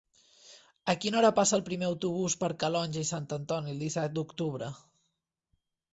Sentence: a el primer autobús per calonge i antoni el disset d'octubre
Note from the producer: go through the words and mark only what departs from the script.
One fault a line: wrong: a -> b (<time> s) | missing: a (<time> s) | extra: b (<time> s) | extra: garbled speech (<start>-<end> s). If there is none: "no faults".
extra: quina hora passa (1.0 s)
extra: sant (3.1 s)